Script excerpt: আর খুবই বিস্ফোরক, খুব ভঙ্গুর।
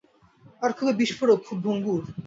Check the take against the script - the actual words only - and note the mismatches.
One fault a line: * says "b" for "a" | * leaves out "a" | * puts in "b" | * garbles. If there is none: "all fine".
all fine